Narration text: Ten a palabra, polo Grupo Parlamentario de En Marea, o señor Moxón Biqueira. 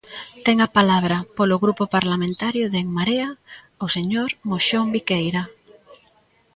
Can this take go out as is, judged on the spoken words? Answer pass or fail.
pass